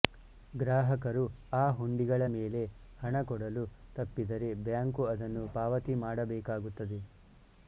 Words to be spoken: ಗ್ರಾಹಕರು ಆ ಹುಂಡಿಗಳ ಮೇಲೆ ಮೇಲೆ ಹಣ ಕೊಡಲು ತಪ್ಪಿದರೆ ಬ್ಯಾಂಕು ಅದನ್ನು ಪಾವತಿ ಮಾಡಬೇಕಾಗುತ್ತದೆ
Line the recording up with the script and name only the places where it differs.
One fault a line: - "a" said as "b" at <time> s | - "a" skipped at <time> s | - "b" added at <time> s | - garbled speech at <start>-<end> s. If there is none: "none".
- "ಮೇಲೆ" skipped at 2.6 s